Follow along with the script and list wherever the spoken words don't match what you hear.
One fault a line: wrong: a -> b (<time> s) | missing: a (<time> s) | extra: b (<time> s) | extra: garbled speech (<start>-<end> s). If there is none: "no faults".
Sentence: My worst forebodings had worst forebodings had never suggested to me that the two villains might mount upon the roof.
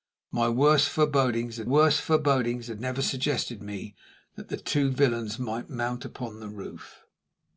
no faults